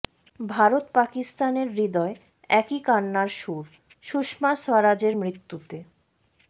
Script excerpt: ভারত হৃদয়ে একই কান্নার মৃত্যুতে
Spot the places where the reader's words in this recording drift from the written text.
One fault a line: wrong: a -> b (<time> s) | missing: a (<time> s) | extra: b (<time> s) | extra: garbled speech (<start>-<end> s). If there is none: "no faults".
extra: পাকিস্তানের (0.9 s)
extra: সুর সুষমা স্বরাজের (3.4 s)